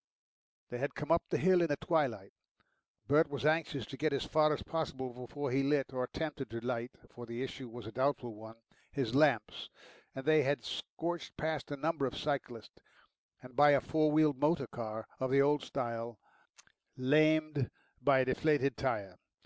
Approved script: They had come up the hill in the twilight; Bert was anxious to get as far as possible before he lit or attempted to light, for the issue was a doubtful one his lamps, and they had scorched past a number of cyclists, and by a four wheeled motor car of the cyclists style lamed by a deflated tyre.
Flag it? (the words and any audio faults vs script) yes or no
yes